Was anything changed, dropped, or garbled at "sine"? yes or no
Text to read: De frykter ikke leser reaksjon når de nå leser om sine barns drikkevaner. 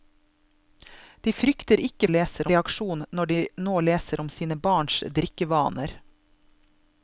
no